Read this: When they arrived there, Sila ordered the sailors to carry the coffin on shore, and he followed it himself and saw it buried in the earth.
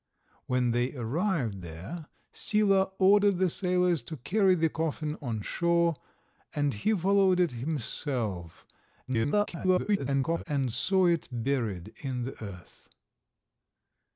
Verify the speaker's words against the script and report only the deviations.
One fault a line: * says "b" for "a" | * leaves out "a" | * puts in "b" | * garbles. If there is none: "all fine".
* garbles